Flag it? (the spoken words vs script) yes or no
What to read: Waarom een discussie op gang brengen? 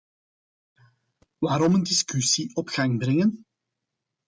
no